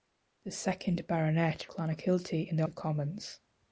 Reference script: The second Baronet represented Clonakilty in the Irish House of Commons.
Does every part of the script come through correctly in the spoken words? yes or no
no